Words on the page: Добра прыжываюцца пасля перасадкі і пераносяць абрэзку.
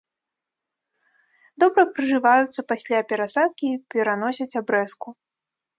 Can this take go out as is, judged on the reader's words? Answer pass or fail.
pass